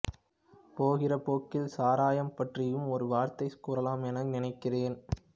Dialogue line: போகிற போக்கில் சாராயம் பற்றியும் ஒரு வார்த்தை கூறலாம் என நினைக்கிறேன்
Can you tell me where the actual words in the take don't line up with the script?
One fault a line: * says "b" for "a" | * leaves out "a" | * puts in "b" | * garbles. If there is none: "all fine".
all fine